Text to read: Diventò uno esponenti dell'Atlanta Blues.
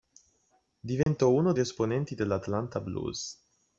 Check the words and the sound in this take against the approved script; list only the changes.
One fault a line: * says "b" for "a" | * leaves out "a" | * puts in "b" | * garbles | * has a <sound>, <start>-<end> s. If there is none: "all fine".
* has a dropout, 1.0-1.1 s